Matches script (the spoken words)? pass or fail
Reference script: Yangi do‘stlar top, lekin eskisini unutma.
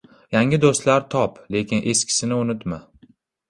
pass